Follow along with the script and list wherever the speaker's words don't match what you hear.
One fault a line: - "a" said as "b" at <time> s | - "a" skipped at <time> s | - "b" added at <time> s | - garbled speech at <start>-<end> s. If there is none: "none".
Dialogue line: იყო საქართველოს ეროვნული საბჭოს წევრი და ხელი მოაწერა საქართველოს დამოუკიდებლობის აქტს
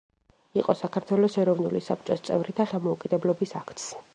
- "ხელი მოაწერა საქართველოს" skipped at 2.6 s